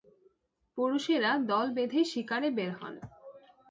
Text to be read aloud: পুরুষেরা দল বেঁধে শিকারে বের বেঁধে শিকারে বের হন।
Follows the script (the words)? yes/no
no